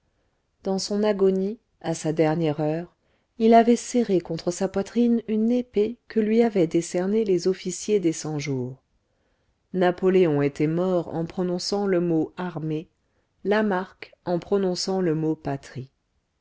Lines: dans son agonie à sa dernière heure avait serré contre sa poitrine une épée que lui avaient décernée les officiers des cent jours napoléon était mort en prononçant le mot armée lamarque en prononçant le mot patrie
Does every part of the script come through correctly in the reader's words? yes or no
no